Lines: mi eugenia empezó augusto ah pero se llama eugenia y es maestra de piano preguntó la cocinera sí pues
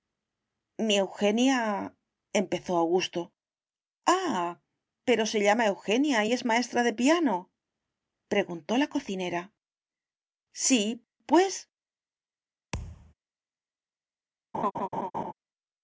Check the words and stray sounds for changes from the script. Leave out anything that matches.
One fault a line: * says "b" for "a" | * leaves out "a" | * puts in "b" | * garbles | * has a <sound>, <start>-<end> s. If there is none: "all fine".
* has a thud, 12.7-13.1 s
* has a laugh, 14.5-15.3 s